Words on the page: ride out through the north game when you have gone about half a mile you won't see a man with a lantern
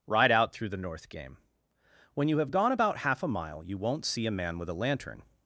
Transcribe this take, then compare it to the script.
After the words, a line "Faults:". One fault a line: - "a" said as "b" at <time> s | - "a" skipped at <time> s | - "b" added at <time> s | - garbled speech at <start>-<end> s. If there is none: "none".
ride out through the north game when you have gone about half a mile you won't see a man with a lantern
Faults:
none